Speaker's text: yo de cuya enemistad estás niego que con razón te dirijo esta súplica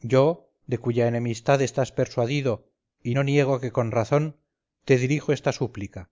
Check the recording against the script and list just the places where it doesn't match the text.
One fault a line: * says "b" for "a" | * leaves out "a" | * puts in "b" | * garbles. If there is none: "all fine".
* puts in "persuadido y no"